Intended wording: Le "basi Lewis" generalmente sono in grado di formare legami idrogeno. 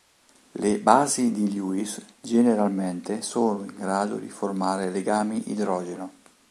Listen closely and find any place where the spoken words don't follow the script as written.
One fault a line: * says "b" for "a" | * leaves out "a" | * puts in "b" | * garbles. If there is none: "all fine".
* puts in "di"